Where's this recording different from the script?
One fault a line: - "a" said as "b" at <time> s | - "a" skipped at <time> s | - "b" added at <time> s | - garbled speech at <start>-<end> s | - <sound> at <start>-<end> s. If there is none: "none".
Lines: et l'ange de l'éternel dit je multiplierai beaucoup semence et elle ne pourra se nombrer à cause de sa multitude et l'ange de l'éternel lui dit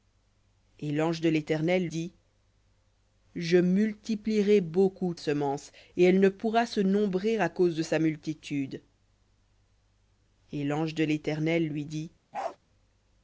- bark at 12.3-12.6 s